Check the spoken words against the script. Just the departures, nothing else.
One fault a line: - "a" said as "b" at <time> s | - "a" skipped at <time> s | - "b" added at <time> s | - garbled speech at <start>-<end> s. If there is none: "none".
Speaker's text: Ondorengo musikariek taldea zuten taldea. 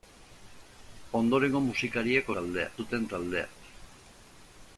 none